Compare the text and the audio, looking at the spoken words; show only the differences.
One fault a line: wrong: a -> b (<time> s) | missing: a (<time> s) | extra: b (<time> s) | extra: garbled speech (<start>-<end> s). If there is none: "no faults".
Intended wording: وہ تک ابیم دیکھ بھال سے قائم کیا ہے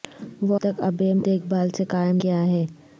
no faults